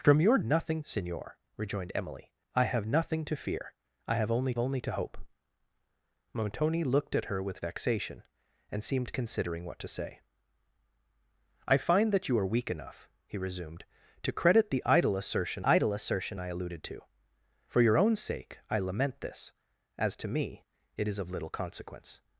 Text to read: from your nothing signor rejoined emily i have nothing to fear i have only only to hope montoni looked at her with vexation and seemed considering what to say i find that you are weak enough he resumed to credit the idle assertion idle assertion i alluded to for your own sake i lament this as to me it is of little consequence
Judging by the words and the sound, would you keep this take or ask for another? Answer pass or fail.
pass